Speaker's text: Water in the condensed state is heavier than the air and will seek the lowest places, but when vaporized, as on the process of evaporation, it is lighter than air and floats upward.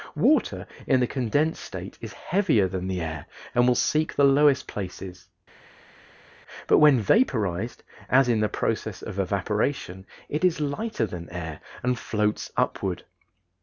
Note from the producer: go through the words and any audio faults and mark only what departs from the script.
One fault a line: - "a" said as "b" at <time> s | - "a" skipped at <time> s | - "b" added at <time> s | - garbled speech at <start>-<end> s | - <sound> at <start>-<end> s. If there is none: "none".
- "on" said as "in" at 8.3 s